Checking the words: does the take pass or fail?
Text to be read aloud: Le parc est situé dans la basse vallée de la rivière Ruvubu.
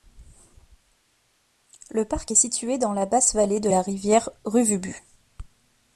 pass